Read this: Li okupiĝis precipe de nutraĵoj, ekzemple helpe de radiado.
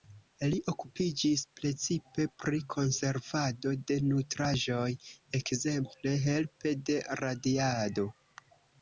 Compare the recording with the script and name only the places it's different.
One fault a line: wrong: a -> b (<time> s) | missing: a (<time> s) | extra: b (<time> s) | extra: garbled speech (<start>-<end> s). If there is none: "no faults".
extra: pri konservado (2.5 s)